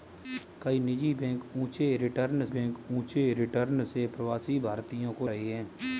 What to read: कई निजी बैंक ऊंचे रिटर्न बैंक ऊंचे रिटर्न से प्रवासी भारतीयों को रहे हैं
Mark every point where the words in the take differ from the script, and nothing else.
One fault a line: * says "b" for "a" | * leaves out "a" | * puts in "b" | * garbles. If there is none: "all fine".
all fine